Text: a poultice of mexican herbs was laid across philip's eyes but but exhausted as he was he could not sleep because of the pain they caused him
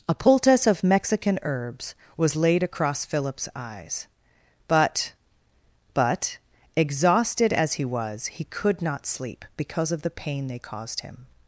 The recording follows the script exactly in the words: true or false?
true